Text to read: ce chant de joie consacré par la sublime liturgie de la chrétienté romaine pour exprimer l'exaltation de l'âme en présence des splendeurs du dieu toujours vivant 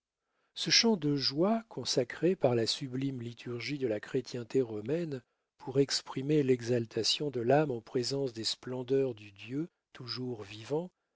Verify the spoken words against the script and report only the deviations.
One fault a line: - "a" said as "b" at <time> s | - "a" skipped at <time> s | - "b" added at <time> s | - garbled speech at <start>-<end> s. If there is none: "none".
none